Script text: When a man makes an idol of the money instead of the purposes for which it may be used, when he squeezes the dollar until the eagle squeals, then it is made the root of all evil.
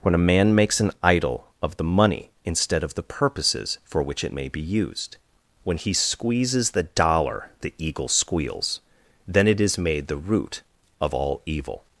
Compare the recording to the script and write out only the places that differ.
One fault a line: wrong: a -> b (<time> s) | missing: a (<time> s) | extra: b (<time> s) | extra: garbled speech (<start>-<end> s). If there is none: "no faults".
missing: until (7.5 s)